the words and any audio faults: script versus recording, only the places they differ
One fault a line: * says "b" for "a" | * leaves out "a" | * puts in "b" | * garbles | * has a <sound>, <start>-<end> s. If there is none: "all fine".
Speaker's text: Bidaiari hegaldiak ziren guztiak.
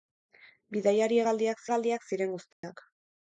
* puts in "hegaldiak"
* has a dropout, 2.5-2.6 s